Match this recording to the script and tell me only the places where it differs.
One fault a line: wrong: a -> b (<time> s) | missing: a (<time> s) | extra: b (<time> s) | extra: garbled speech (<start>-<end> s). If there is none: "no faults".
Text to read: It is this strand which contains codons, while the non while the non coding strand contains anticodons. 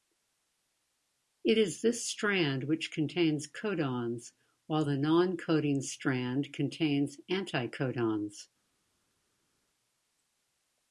missing: while the non (5.4 s)